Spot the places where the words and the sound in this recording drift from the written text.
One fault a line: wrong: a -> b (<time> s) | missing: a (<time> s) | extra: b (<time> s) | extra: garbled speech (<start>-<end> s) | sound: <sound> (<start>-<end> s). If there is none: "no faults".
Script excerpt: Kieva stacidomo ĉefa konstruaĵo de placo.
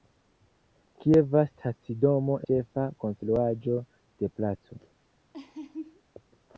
sound: laugh (5.3-6.0 s)